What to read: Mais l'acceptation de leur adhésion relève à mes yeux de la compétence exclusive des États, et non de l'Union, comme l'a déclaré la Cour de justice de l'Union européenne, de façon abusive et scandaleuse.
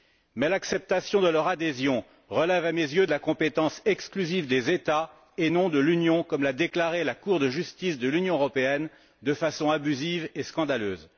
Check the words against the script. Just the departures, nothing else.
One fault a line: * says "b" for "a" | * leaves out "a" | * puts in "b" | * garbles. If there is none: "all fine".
all fine